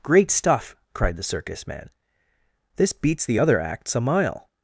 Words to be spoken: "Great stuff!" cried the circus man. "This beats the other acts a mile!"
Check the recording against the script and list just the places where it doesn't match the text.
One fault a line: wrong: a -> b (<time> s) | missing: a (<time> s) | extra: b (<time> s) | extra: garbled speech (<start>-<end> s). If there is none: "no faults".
no faults